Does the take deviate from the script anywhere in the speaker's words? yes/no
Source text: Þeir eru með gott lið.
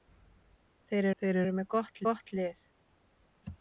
yes